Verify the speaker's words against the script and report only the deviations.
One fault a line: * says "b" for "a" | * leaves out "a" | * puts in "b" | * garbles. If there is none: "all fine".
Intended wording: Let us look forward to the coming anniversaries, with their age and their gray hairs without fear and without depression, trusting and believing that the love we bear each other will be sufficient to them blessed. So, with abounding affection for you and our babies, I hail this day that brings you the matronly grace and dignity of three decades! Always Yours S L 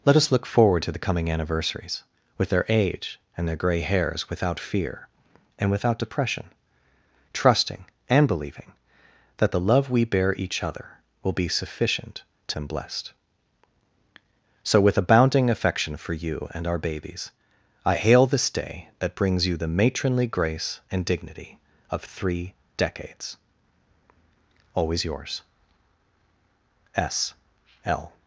all fine